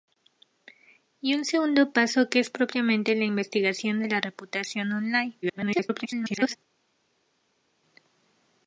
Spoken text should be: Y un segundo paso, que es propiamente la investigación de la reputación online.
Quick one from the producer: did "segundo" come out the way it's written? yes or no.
yes